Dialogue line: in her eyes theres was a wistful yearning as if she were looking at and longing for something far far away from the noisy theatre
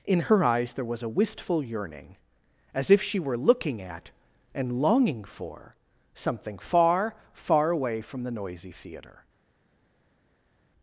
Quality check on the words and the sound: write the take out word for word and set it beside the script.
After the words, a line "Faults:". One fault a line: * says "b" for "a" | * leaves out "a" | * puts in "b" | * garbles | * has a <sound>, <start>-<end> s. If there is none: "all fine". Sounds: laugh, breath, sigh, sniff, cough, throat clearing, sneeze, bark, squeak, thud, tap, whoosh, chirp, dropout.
in her eyes there was a wistful yearning as if she were looking at and longing for something far far away from the noisy theatre
Faults:
* says "there" for "theres"